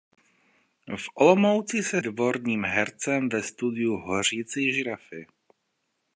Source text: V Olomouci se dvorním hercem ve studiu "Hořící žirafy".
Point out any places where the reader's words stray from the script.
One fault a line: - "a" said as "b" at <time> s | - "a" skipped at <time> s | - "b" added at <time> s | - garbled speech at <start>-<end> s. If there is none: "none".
none